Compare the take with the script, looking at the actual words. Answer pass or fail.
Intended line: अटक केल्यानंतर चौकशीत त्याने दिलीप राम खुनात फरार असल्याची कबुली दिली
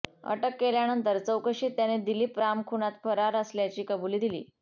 pass